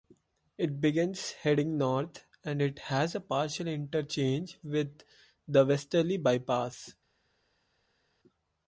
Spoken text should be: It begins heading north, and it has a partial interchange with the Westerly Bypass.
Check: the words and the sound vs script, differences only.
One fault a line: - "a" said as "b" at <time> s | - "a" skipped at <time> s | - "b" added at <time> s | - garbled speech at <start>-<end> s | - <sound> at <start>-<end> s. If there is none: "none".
none